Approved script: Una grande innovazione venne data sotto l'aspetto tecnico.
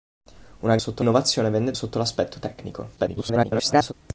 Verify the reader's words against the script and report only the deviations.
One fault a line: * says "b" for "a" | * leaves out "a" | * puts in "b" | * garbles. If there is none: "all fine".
* says "sotto" for "grande"
* leaves out "data"
* garbles